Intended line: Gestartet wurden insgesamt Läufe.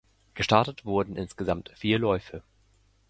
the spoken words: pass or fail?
fail